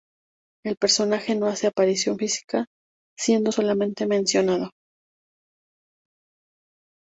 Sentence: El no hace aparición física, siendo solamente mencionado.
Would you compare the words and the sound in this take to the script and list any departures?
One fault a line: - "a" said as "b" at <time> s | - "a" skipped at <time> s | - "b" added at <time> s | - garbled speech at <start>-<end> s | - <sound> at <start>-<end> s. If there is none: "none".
- "personaje" added at 0.8 s